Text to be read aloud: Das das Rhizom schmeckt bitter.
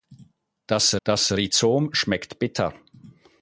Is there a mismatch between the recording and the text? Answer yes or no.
no